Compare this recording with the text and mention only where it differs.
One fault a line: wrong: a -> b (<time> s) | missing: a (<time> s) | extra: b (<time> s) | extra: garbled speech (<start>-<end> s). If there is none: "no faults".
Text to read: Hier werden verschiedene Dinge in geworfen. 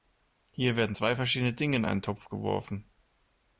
extra: zwei (0.9 s)
extra: einen Topf (1.8 s)